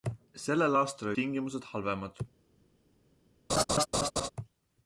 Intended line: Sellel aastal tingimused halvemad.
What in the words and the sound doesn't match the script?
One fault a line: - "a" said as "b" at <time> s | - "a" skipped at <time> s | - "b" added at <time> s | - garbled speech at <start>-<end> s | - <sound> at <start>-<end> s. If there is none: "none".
- laugh at 3.5-4.3 s